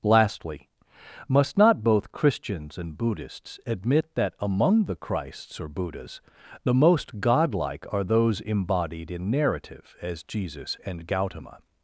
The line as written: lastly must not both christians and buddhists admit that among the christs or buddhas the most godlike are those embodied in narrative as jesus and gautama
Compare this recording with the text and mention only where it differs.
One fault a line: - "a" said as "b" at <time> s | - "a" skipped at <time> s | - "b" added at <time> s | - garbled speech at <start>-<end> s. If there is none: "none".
none